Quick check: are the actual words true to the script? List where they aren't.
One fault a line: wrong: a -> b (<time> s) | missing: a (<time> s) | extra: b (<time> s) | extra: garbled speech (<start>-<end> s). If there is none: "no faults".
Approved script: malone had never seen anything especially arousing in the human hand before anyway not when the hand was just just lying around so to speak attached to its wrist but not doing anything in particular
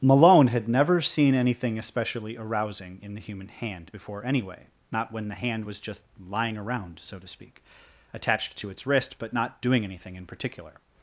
missing: just (6.0 s)